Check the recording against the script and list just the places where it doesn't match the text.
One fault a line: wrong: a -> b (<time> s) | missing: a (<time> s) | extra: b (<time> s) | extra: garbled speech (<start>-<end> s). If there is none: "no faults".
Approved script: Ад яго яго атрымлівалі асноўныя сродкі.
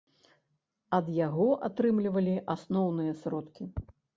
missing: яго (1.5 s)